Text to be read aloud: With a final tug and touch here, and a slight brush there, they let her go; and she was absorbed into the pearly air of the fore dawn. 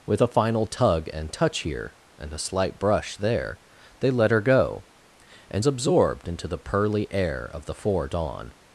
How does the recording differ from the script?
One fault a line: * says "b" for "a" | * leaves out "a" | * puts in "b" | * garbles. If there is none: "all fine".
* leaves out "she was"